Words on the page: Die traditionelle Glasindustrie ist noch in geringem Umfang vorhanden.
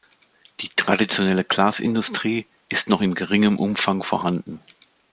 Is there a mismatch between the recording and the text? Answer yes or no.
no